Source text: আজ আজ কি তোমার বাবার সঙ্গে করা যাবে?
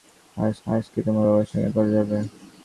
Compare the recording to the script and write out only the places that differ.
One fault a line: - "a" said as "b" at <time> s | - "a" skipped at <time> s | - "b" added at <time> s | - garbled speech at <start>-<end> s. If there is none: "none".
none